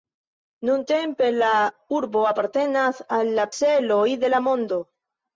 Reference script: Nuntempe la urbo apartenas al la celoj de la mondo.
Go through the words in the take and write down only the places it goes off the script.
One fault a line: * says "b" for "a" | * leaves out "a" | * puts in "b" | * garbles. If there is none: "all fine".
all fine